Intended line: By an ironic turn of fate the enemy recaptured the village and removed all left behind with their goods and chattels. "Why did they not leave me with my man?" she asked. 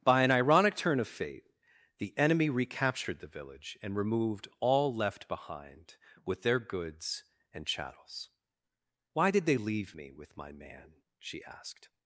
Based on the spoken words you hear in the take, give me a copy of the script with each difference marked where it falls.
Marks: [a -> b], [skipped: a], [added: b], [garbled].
By an ironic turn of fate the enemy recaptured the village and removed all left behind with their goods and chattels. "Why did they [skipped: not] leave me with my man?" she asked.